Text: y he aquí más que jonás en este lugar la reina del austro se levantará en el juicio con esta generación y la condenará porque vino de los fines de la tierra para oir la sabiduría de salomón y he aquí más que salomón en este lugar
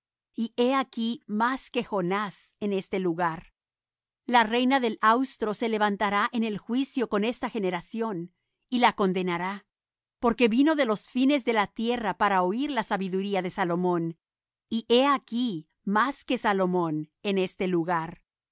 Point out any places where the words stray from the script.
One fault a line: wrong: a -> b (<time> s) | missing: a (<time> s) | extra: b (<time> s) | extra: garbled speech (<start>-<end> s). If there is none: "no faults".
no faults